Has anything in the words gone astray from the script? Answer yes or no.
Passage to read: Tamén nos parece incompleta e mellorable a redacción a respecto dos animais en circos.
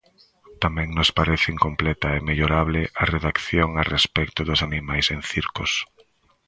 no